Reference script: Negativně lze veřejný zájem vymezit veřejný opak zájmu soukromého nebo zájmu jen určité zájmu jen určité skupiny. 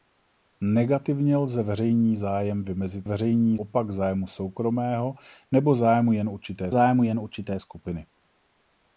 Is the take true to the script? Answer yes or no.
yes